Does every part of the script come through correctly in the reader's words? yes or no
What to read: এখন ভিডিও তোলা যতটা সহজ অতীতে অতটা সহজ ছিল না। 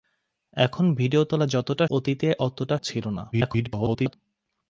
no